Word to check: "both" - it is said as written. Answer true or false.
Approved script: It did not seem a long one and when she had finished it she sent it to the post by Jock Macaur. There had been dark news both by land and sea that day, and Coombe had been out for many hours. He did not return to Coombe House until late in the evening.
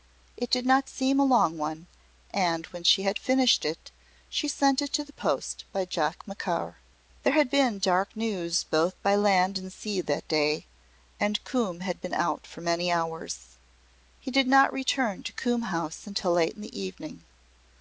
true